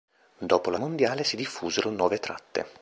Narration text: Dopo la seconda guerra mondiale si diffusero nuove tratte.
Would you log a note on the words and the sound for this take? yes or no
yes